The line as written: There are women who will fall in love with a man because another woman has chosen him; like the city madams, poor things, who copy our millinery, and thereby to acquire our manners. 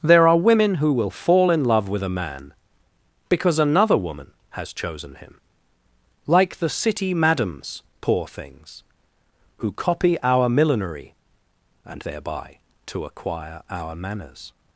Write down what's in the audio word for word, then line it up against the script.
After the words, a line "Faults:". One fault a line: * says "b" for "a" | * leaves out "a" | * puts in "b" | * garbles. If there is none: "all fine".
There are women who will fall in love with a man because another woman has chosen him; like the city madams, poor things, who copy our millinery, and thereby to acquire our manners.
Faults:
all fine